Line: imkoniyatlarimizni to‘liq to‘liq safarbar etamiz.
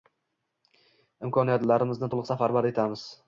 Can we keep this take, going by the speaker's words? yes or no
no